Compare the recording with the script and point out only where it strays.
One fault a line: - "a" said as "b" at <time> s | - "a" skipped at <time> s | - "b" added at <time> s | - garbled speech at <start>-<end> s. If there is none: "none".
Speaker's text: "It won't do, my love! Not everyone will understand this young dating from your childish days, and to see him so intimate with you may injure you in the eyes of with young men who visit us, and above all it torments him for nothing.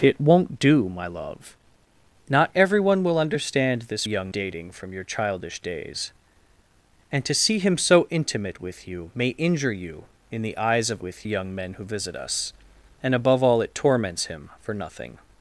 none